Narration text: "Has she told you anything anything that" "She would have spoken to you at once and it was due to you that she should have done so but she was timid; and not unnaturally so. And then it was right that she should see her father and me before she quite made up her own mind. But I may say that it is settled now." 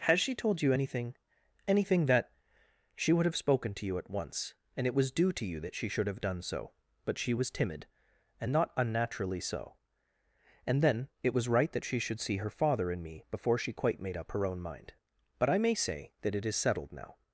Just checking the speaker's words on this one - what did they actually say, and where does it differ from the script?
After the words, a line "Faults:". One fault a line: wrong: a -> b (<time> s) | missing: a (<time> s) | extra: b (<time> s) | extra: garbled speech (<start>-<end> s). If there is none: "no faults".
"Has she told you anything anything that" "She would have spoken to you at once and it was due to you that she should have done so but she was timid; and not unnaturally so. And then it was right that she should see her father and me before she quite made up her own mind. But I may say that it is settled now."
Faults:
no faults